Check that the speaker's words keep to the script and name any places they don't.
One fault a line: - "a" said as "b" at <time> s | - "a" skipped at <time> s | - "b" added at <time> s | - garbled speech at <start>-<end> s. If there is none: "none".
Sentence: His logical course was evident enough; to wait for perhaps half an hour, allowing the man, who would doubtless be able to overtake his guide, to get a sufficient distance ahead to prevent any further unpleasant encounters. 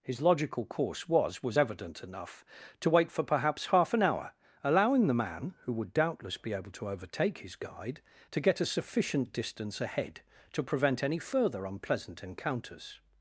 - "was" added at 1.4 s